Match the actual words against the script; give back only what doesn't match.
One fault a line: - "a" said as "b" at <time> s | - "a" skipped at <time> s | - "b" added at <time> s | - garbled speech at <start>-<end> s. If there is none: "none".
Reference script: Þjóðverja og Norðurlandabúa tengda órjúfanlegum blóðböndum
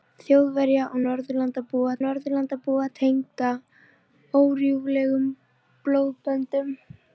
- "Norðurlandabúa" added at 2.0 s